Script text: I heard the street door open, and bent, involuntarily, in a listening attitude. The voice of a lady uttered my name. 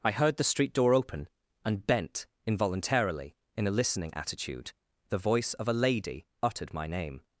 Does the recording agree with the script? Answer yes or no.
yes